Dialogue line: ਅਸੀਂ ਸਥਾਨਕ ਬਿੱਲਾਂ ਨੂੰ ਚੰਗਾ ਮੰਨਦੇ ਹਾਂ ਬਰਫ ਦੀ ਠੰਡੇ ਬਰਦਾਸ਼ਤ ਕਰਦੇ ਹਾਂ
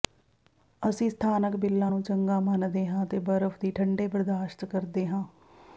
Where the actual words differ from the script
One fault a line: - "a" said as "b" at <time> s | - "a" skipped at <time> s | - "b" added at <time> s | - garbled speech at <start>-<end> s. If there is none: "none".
- "ਅਤੇ" added at 3.0 s